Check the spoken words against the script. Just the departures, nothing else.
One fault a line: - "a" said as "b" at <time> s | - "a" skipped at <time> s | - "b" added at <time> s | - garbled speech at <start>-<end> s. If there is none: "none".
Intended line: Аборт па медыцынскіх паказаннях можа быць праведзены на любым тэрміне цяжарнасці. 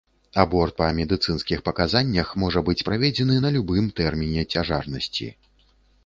none